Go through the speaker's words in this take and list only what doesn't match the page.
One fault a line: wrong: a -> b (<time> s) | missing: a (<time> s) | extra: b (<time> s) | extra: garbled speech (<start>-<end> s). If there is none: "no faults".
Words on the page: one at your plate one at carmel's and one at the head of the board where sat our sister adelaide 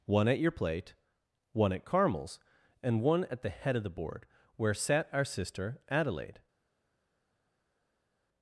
no faults